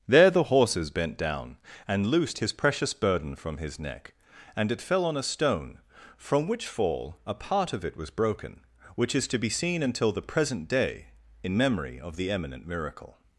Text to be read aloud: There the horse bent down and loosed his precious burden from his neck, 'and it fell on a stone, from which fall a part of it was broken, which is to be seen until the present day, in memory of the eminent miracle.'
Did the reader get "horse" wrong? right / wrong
wrong